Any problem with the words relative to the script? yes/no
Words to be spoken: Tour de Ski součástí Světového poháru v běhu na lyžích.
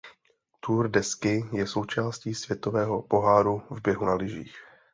yes